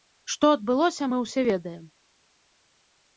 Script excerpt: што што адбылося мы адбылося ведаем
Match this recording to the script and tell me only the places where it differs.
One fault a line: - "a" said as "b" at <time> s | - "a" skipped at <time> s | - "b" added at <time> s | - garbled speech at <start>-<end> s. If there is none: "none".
- "што" skipped at 0.5 s
- "адбылося" said as "ўсе" at 1.2 s